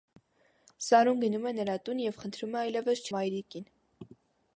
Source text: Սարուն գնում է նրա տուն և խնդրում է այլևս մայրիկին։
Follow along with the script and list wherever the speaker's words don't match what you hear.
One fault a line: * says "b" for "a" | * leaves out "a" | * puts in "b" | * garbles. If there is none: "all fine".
all fine